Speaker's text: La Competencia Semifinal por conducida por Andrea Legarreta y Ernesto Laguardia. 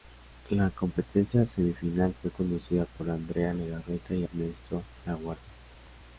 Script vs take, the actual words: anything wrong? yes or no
yes